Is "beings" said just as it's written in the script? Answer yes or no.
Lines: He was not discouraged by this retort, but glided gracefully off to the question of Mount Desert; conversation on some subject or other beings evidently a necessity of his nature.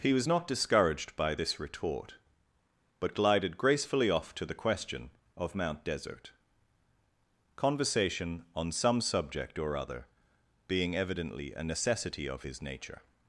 no